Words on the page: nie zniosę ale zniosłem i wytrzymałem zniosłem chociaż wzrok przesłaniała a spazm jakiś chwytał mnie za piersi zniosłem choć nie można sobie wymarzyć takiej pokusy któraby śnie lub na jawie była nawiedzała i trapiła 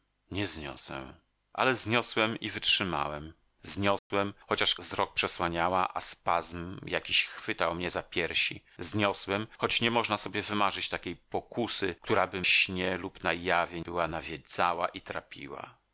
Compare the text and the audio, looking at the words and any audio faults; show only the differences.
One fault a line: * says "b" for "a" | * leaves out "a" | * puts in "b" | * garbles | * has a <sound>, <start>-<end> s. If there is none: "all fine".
* has a dropout, 4.0-4.1 s